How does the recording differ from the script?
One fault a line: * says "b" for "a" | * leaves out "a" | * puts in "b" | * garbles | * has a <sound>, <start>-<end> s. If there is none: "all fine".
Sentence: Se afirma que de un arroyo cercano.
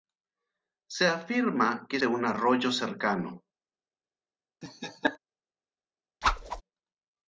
* has a laugh, 4.6-5.2 s
* has a whoosh, 6.2-6.6 s